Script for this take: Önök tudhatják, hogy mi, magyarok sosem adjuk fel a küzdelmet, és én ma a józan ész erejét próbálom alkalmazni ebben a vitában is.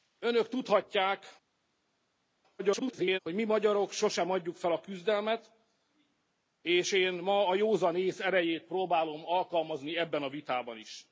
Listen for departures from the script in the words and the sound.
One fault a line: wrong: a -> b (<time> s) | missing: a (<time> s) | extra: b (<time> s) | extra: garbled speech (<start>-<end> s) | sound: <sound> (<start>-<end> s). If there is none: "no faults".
extra: garbled speech (2.6-3.2 s)